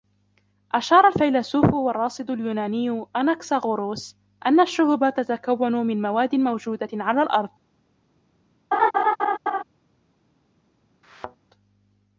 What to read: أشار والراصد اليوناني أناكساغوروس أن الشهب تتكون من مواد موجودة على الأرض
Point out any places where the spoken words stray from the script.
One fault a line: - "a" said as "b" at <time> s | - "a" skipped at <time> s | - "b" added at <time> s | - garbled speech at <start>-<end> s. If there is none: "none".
- "الفيلسوف" added at 1.0 s